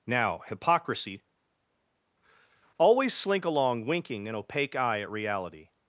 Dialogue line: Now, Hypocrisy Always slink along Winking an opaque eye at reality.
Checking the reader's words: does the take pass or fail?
pass